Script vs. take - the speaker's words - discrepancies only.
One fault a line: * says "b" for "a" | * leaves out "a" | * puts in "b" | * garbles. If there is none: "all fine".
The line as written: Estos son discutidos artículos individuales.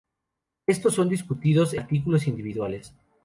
all fine